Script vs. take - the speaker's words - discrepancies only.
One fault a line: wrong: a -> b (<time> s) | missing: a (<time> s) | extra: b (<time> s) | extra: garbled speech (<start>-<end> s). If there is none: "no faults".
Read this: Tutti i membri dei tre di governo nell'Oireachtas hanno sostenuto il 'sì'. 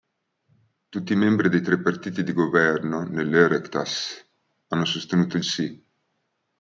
extra: partiti (1.8 s)